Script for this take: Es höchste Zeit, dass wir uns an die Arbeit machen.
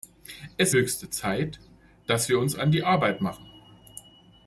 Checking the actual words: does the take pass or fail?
pass